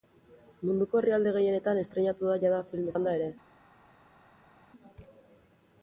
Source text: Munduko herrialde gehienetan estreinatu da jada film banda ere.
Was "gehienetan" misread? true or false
false